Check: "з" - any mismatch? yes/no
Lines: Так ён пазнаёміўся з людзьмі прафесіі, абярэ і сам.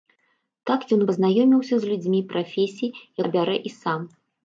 no